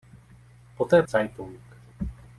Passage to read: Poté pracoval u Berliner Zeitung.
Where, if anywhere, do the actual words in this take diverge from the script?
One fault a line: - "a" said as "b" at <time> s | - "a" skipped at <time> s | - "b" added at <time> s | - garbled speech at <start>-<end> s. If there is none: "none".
- "pracoval u Berliner" skipped at 1.0 s